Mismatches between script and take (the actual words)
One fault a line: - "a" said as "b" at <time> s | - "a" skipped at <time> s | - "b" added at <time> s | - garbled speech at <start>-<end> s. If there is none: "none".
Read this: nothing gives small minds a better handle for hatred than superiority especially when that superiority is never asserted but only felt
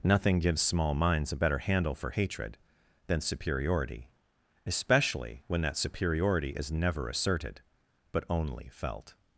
none